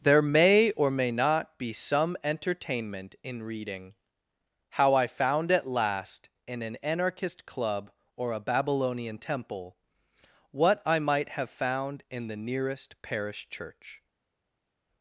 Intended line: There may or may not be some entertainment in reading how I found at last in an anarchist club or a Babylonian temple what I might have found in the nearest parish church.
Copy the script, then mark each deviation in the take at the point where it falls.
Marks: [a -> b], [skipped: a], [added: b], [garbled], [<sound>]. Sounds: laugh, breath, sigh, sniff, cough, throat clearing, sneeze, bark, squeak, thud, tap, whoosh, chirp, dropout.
There may or may not be some entertainment in reading how I found at last in an anarchist club or a Babylonian temple what I might have found in the nearest parish church.